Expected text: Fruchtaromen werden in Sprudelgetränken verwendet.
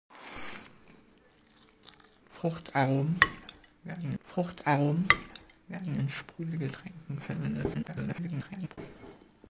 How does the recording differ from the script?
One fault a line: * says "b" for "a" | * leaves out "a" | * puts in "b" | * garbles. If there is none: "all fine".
* puts in "fruchtaromen werden"
* garbles